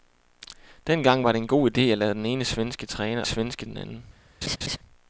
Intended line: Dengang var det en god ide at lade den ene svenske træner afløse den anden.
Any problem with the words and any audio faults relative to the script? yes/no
yes